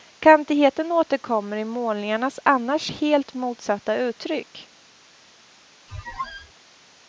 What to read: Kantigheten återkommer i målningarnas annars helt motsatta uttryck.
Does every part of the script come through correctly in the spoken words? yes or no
yes